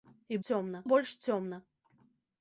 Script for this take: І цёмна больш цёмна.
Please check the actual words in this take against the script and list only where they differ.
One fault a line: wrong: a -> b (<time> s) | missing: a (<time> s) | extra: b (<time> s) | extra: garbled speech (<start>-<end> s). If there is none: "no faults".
no faults